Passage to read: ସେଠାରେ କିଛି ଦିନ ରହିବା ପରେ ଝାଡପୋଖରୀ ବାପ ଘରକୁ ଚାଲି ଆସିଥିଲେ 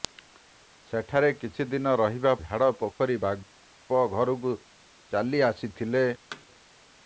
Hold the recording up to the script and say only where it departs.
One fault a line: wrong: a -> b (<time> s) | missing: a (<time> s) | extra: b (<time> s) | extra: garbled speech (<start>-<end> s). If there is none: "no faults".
missing: ପରେ (2.3 s)